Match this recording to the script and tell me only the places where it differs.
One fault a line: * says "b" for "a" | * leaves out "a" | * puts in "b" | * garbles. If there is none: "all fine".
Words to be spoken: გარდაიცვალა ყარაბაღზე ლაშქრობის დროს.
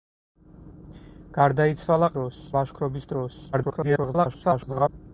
* says "დროს" for "ყარაბაღზე"
* garbles